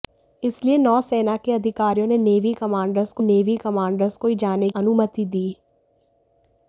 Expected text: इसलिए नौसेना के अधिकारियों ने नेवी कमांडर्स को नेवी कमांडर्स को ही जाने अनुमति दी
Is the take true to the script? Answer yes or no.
yes